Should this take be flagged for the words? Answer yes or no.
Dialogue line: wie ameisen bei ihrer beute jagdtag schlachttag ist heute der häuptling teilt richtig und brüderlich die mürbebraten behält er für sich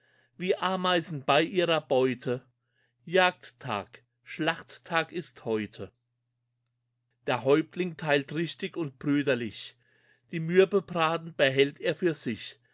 no